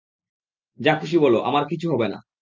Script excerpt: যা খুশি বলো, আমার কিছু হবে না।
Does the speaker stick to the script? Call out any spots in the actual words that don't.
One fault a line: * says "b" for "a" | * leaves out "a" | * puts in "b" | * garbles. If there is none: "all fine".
all fine